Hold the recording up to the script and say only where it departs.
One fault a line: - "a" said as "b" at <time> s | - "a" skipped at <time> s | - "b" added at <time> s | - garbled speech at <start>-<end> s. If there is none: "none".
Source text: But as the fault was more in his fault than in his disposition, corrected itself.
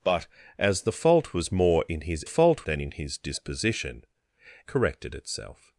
none